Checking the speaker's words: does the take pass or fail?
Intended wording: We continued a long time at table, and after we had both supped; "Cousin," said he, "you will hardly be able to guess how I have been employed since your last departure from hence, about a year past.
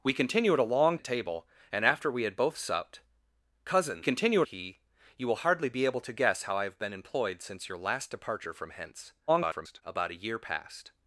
fail